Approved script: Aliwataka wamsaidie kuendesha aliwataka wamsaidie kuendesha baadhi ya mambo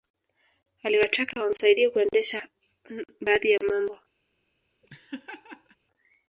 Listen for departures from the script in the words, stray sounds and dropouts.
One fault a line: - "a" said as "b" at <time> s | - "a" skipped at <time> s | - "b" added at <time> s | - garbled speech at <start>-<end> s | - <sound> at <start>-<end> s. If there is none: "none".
- "aliwataka wamsaidie kuendesha" skipped at 2.5 s
- laugh at 4.8-5.8 s